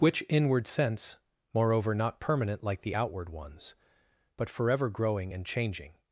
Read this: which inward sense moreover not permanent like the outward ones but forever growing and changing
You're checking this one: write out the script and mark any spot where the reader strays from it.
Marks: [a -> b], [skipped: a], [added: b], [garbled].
which inward sense moreover not permanent like the outward ones but forever growing and changing